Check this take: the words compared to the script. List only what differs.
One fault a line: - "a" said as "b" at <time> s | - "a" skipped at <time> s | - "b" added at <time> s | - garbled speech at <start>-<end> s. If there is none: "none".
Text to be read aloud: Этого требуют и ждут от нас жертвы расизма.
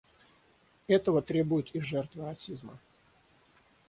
- "ждут от нас" skipped at 1.8 s